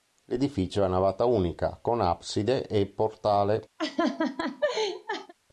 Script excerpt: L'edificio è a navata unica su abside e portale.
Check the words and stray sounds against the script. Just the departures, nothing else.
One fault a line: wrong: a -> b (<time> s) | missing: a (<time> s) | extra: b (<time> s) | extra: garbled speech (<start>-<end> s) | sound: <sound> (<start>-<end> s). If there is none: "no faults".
wrong: su -> con (1.8 s)
sound: laugh (3.8-5.3 s)